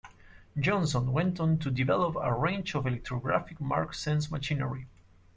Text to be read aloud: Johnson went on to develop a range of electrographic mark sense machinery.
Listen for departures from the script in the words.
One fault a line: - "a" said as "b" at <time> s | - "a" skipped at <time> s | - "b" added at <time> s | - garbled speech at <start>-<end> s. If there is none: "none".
none